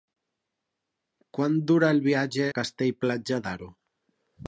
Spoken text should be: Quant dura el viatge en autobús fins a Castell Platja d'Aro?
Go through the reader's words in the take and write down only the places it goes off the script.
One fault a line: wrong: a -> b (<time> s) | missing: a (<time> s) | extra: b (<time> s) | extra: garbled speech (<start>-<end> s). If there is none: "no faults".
missing: en autobús fins (2.5 s)